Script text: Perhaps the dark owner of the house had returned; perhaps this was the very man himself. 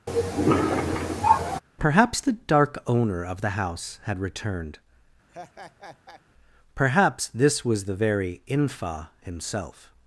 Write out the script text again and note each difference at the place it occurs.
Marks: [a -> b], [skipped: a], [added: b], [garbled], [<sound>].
[cough] Perhaps the dark owner of the house had returned; [laugh] perhaps this was the very [man -> infa] himself.